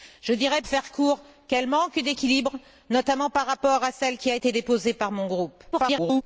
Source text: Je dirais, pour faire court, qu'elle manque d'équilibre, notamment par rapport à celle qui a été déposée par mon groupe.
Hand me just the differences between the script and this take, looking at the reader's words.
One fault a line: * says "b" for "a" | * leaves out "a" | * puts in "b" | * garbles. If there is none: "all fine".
* leaves out "pour"
* garbles